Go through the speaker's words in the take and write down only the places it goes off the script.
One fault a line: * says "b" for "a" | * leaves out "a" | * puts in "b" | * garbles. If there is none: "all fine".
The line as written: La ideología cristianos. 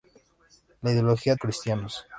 all fine